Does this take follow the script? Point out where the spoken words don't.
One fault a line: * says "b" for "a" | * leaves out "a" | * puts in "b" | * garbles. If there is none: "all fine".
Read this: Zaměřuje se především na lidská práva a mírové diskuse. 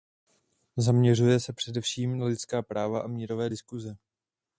all fine